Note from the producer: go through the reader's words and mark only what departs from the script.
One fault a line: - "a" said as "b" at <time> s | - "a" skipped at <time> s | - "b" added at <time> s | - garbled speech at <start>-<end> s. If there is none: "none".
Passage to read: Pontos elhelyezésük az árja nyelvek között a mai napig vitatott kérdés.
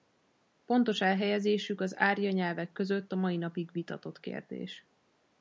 none